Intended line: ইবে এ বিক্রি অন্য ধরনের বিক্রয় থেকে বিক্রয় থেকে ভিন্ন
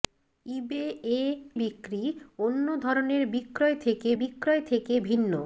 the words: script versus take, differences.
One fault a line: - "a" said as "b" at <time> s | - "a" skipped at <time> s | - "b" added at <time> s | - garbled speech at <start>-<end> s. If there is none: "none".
none